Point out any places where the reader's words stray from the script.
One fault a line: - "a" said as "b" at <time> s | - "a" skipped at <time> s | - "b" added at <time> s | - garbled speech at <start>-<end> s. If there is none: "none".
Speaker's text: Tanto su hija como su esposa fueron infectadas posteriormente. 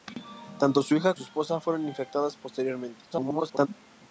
- "como" skipped at 1.1 s
- garbled speech at 3.1-3.7 s